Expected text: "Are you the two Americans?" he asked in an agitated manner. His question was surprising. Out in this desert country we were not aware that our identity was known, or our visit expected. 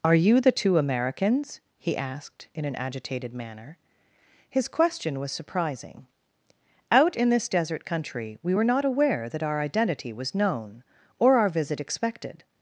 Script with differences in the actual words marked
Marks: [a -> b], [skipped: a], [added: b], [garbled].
"Are you the two Americans?" he asked in an agitated manner. His question was surprising. Out in this desert country we were not aware that our identity was known, or our visit expected.